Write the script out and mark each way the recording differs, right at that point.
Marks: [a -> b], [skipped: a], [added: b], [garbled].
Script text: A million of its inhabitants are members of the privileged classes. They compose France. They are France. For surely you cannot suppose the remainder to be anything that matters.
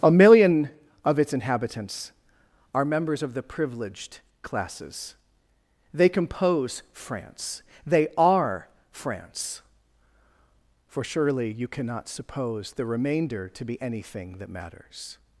A million of its inhabitants are members of the privileged classes. They compose France. They are France. For surely you cannot suppose the remainder to be anything that matters.